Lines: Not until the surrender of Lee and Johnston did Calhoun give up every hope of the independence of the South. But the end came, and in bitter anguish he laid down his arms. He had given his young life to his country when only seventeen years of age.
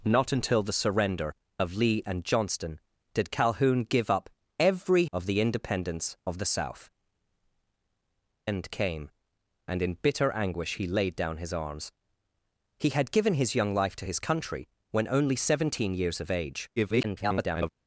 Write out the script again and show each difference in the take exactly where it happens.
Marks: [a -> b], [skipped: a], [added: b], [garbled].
Not until the surrender of Lee and Johnston did Calhoun give up every [skipped: hope] of the independence of the South. [skipped: But the] end came, and in bitter anguish he laid down his arms. He had given his young life to his country when only seventeen years of age. [garbled]